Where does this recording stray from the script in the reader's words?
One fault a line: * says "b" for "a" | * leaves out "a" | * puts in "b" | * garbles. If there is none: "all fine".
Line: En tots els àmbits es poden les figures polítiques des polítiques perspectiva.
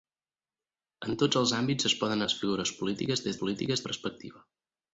all fine